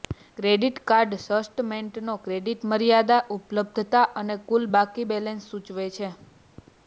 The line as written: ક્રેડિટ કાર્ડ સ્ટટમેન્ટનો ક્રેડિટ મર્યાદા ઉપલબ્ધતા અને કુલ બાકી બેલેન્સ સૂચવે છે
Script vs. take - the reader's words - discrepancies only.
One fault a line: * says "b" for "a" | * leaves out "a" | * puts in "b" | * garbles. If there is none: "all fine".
all fine